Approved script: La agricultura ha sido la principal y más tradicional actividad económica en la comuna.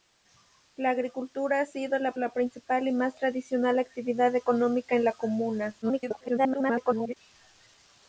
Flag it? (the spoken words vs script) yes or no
yes